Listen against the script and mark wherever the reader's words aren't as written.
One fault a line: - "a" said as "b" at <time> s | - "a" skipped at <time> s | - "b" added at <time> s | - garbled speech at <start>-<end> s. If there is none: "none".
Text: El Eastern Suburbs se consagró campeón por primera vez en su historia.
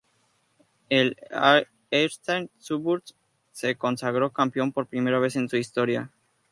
none